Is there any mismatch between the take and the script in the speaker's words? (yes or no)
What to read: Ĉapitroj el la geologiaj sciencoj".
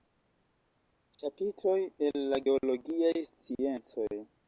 no